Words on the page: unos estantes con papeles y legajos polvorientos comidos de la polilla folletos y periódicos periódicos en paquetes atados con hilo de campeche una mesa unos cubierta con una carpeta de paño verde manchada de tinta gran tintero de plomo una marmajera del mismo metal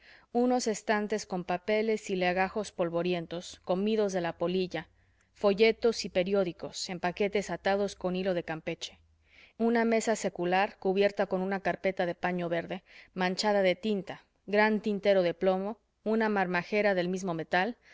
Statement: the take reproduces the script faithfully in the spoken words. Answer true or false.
false